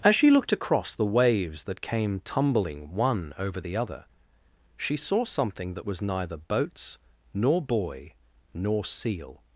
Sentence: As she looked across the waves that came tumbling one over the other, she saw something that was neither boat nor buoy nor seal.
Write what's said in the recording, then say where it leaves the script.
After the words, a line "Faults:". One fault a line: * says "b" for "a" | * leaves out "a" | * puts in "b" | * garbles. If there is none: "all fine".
As she looked across the waves that came tumbling one over the other, she saw something that was neither boats nor buoy nor seal.
Faults:
* says "boats" for "boat"